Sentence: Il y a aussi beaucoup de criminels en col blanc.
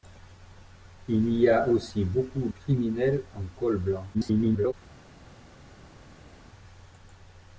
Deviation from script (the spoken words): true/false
true